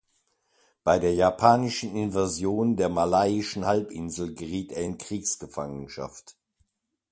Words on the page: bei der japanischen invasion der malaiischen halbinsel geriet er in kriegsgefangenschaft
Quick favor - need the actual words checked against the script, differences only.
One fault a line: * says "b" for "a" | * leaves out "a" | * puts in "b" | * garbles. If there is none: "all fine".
all fine